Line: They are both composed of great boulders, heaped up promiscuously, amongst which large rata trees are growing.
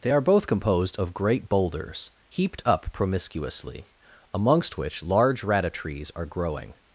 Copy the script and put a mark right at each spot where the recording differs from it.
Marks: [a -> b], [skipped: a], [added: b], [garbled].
They are both composed of great boulders, heaped up promiscuously, amongst which large rata trees are growing.